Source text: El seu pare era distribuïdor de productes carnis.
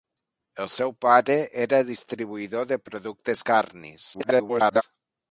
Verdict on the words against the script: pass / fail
fail